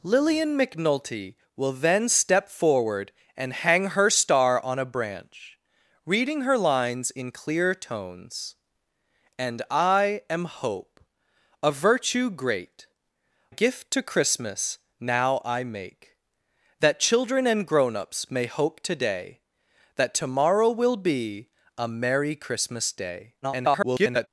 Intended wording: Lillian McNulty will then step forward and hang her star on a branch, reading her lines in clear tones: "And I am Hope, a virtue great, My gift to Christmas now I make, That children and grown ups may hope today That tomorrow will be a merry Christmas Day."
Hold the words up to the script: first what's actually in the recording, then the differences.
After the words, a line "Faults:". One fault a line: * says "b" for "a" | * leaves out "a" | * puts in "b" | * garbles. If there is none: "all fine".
Lillian McNulty will then step forward and hang her star on a branch, reading her lines in clear tones: "And I am Hope, a virtue great, Gift to Christmas now I make, That children and grown ups may hope today That tomorrow will be a merry Christmas Day." [garbled]
Faults:
* leaves out "My"
* garbles